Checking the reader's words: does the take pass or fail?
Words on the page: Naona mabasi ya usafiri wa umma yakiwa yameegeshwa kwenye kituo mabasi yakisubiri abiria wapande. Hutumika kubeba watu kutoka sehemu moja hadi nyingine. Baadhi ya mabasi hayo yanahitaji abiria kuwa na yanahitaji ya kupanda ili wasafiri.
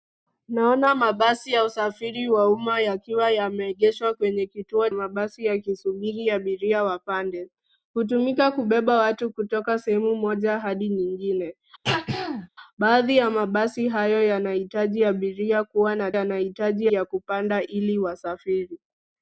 pass